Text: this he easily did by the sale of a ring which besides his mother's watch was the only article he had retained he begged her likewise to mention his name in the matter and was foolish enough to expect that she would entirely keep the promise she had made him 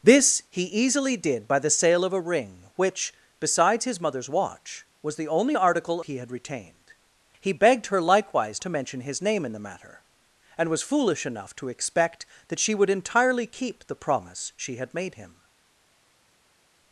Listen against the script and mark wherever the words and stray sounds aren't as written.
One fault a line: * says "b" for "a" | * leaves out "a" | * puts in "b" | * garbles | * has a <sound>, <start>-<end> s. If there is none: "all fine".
all fine